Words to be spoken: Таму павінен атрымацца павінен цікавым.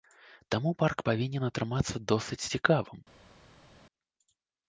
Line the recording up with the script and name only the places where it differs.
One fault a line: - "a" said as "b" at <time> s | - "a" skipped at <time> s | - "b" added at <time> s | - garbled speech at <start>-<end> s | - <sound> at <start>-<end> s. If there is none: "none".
- "парк" added at 0.8 s
- "павінен" said as "досыць" at 2.1 s